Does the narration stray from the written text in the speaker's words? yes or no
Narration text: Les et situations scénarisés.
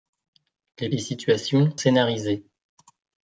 no